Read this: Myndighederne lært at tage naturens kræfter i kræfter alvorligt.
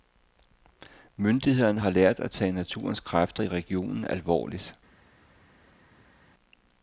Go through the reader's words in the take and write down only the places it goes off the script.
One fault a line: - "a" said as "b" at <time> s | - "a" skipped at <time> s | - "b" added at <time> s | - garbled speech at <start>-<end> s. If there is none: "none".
- "har" added at 1.8 s
- "kræfter" said as "regionen" at 3.5 s